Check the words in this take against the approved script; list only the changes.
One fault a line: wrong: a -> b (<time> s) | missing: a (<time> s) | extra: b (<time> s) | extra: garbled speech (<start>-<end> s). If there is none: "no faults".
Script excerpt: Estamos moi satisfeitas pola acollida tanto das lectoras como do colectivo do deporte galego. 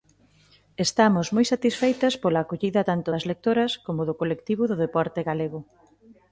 no faults